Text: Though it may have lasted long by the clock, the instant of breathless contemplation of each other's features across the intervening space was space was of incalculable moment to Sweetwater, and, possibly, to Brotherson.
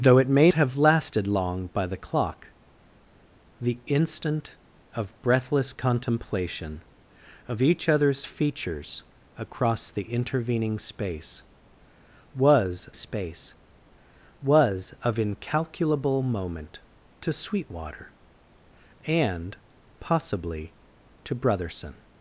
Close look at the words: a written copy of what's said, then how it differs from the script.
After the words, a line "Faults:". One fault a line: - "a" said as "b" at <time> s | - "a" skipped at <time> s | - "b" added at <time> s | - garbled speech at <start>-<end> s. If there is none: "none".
Though it may have lasted long by the clock, the instant of breathless contemplation of each other's features across the intervening space was space was of incalculable moment to Sweetwater, and, possibly, to Brotherson.
Faults:
none